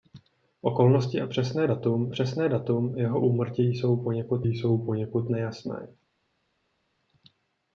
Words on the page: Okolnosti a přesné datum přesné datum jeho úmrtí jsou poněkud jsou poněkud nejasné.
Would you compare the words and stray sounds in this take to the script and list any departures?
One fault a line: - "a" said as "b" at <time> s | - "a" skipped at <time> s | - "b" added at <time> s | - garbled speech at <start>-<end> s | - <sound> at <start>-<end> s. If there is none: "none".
none